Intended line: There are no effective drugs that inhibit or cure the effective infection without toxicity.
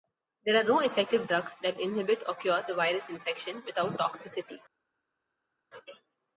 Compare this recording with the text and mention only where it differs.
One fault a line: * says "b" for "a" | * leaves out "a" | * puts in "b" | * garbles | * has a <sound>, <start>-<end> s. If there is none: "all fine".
* says "virus" for "effective"